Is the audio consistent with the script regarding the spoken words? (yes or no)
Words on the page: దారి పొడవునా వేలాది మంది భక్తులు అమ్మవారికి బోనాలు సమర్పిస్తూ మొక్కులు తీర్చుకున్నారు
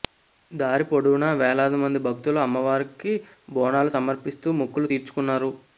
yes